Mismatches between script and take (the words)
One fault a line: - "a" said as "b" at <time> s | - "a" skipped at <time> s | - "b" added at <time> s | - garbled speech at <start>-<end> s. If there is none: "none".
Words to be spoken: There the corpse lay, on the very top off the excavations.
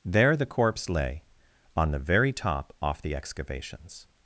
none